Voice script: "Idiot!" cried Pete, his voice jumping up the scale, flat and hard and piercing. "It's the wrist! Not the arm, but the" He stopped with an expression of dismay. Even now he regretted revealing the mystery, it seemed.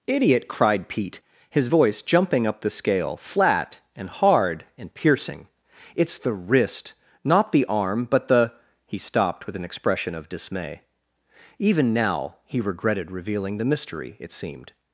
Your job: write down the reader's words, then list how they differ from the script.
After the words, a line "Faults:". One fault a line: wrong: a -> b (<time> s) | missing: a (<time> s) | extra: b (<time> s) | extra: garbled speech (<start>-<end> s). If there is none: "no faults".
"Idiot!" cried Pete, his voice jumping up the scale, flat and hard and piercing. "It's the wrist! Not the arm, but the" He stopped with an expression of dismay. Even now he regretted revealing the mystery, it seemed.
Faults:
no faults